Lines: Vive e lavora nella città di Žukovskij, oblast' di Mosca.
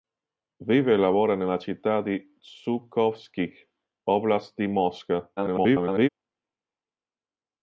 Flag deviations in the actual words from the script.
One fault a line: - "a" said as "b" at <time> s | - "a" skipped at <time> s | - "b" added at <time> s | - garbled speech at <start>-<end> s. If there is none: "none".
- garbled speech at 5.4-6.1 s